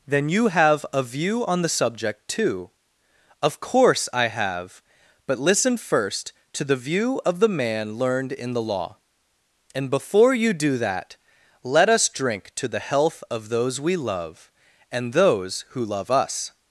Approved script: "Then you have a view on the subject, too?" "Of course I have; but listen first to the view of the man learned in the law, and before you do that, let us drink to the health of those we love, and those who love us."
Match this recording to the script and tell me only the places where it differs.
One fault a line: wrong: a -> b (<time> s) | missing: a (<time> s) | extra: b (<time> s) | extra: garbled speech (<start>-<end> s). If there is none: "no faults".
no faults